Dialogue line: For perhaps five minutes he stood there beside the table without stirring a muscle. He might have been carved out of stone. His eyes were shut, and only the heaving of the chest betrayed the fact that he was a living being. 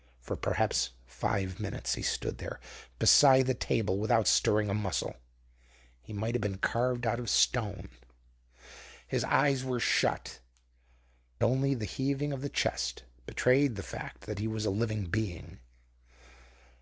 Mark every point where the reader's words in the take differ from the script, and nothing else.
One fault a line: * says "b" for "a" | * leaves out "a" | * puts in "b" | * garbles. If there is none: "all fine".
* leaves out "and"